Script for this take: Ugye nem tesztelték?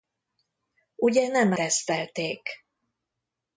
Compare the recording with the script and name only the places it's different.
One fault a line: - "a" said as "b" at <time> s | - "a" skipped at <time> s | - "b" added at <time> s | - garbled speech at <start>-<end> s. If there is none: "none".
none